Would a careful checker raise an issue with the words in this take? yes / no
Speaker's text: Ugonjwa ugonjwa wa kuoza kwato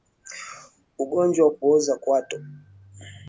yes